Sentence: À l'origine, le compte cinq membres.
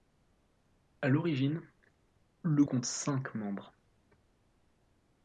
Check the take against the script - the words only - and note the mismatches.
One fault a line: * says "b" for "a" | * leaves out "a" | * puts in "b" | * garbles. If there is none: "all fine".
all fine